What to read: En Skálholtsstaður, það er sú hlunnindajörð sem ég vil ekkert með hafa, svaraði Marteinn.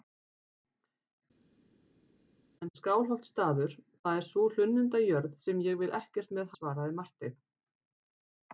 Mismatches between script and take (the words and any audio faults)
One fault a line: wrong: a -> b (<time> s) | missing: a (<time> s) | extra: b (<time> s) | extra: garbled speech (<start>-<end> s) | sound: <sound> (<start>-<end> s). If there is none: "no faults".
missing: hafa (6.6 s)